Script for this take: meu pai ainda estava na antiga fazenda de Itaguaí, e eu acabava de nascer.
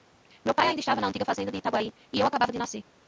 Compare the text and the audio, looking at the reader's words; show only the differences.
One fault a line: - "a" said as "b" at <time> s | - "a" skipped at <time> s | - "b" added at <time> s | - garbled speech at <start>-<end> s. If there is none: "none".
none